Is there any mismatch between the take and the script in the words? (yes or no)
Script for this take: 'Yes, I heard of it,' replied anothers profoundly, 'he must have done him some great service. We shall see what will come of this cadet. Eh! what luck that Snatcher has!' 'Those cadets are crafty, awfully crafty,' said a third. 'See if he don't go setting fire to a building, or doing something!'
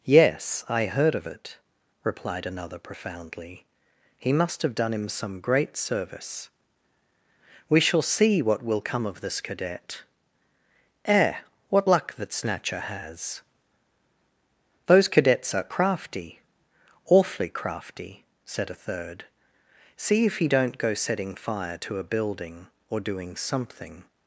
yes